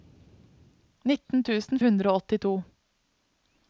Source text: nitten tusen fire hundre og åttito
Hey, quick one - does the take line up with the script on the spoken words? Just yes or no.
no